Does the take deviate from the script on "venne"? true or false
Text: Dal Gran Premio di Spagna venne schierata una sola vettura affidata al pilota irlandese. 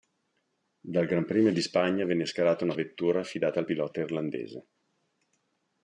false